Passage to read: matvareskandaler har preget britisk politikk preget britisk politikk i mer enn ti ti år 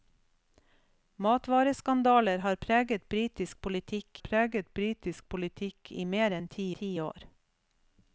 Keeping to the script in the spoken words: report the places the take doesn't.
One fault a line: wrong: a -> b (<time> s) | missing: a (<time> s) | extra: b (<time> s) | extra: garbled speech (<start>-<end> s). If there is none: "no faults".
no faults